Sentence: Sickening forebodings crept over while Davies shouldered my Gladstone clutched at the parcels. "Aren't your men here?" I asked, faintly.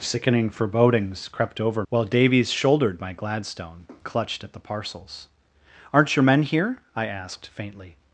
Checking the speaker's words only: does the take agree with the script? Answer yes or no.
yes